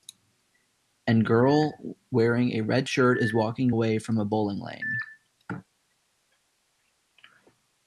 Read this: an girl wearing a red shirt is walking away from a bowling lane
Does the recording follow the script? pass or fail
pass